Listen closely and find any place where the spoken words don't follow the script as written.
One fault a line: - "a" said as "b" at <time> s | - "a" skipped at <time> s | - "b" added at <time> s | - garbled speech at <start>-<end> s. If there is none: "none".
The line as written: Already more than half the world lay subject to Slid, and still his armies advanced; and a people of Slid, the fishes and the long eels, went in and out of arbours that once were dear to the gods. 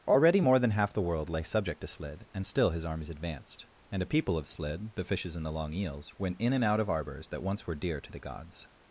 none